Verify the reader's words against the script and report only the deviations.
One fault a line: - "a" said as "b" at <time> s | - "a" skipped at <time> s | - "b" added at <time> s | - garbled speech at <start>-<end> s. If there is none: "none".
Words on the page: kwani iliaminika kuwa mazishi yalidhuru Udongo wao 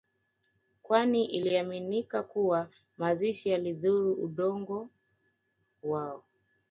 none